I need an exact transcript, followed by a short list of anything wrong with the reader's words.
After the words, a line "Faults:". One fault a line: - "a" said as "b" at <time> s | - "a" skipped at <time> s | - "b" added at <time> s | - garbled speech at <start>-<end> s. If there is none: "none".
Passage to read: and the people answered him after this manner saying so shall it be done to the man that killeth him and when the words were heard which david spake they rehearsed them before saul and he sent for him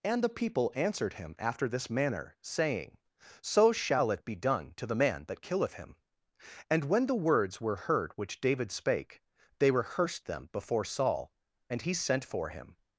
and the people answered him after this manner saying so shall it be done to the man that killeth him and when the words were heard which david spake they rehearsed them before saul and he sent for him
Faults:
none